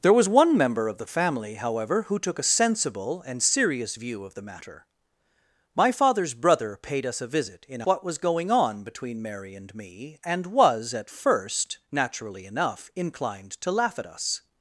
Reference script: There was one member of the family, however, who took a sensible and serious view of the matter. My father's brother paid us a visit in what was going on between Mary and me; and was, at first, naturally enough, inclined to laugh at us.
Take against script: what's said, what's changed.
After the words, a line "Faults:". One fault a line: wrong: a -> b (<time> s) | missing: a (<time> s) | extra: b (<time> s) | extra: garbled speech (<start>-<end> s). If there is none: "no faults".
There was one member of the family, however, who took a sensible and serious view of the matter. My father's brother paid us a visit in what was going on between Mary and me; and was, at first, naturally enough, inclined to laugh at us.
Faults:
no faults